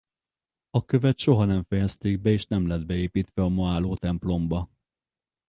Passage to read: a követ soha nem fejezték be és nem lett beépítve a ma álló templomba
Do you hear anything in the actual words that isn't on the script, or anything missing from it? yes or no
no